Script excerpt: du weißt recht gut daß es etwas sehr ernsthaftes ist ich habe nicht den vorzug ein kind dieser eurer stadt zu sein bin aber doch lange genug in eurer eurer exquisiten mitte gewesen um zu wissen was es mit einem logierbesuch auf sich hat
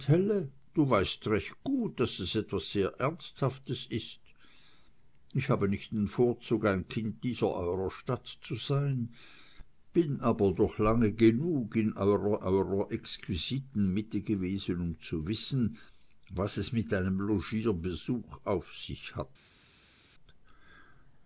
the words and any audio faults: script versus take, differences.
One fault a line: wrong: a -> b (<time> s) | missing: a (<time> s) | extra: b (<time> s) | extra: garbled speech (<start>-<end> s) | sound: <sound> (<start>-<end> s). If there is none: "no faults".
no faults